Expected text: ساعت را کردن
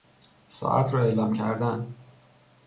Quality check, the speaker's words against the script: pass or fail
fail